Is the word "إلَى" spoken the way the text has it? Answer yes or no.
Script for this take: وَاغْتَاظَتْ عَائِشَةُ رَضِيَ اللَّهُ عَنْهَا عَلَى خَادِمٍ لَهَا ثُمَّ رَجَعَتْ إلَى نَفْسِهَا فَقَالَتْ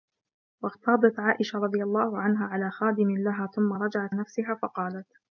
no